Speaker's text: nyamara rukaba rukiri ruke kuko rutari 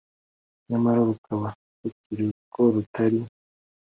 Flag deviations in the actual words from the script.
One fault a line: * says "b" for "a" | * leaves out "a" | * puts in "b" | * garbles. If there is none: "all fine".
* leaves out "ruke"